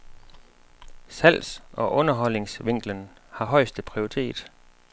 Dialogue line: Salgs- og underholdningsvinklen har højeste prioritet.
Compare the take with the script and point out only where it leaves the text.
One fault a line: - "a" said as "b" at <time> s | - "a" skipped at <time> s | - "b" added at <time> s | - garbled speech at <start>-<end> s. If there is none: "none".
none